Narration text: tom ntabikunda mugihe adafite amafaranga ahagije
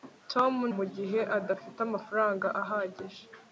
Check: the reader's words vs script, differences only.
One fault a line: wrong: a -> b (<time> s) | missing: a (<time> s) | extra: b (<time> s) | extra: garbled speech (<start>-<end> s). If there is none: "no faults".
missing: ntabikunda (0.5 s)